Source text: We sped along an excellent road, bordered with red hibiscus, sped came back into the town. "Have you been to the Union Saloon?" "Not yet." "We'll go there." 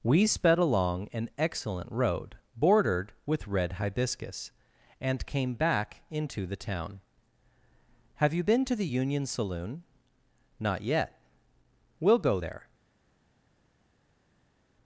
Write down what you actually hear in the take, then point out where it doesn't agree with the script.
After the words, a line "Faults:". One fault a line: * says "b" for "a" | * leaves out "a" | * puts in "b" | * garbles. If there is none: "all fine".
We sped along an excellent road, bordered with red hibiscus, and came back into the town. "Have you been to the Union Saloon?" "Not yet." "We'll go there."
Faults:
* says "and" for "sped"